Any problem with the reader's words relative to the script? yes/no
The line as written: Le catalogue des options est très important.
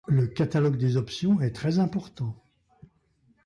no